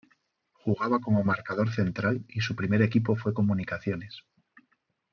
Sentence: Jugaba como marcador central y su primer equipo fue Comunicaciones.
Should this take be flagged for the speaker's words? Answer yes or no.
no